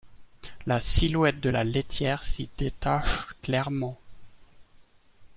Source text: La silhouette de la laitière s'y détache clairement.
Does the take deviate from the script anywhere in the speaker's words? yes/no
no